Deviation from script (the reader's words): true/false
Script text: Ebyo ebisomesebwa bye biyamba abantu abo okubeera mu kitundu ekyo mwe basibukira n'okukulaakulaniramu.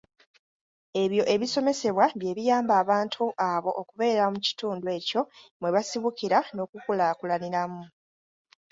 false